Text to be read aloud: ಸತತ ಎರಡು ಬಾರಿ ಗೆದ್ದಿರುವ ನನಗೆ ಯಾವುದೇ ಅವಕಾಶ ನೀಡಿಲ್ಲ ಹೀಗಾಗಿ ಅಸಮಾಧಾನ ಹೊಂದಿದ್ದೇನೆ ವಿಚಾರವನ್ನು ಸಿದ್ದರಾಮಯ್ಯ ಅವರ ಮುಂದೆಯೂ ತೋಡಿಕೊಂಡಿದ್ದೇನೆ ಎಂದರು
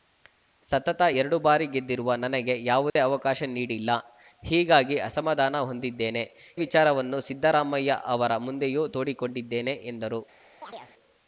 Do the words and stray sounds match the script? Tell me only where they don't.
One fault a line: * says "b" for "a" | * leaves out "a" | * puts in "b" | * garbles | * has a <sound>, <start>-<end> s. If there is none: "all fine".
* has a dropout, 2.9-3.0 s
* has a chirp, 10.6-10.9 s